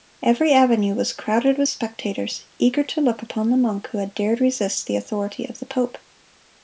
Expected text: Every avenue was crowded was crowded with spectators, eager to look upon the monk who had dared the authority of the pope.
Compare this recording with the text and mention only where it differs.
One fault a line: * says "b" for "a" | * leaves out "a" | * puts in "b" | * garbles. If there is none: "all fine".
* leaves out "was crowded"
* puts in "resist"